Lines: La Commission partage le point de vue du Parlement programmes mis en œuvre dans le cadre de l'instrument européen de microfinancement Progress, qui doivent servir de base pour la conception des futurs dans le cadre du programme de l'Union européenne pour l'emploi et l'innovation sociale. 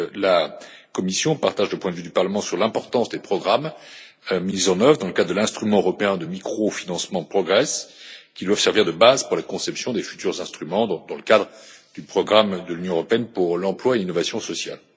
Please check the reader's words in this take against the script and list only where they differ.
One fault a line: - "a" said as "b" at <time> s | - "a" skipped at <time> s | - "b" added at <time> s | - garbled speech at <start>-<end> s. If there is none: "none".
- "sur l'importance des" added at 2.4 s
- "instruments" added at 10.4 s